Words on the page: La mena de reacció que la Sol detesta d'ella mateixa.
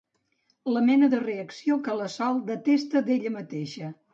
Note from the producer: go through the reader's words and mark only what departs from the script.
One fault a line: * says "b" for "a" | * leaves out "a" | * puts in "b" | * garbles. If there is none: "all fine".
all fine